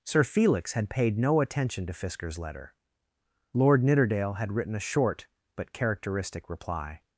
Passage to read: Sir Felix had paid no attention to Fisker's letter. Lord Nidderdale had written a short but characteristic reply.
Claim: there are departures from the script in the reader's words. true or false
false